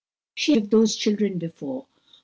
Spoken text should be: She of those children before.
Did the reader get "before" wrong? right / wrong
right